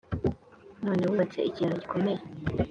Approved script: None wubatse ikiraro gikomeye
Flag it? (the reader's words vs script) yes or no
no